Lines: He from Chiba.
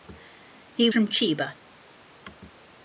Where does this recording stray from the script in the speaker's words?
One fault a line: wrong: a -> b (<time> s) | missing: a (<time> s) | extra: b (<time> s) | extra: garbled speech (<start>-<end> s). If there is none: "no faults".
no faults